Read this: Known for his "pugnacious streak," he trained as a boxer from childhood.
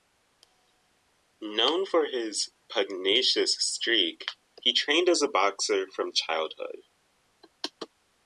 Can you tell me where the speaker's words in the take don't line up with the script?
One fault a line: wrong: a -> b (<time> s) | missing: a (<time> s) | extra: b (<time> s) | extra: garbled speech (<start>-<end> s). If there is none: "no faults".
no faults